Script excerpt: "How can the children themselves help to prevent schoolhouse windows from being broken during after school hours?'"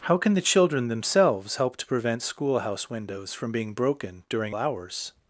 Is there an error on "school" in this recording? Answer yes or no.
yes